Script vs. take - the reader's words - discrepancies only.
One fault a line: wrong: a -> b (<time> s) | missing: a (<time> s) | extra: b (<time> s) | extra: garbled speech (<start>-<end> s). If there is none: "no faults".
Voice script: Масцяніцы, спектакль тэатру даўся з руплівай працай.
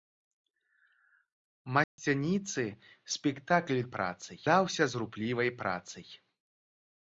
wrong: тэатру -> працай (4.0 s)